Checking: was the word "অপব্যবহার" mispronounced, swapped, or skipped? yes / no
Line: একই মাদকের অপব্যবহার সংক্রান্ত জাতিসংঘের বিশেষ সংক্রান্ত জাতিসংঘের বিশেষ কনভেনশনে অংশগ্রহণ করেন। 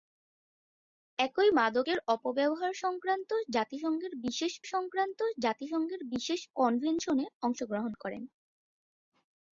no